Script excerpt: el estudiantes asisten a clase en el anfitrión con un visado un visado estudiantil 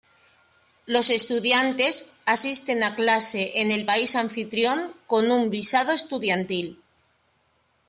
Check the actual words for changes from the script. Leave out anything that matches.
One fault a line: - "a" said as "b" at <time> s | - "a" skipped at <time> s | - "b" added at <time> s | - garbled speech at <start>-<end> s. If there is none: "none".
- "el" said as "los" at 0.9 s
- "país" added at 3.8 s
- "un visado" skipped at 5.9 s